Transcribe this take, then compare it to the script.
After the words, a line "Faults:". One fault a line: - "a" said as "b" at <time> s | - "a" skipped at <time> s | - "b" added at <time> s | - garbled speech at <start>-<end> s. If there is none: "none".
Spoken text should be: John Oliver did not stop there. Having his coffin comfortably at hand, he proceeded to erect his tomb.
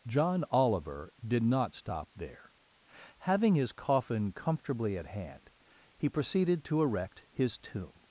John Oliver did not stop there. Having his coffin comfortably at hand, he proceeded to erect his tomb.
Faults:
none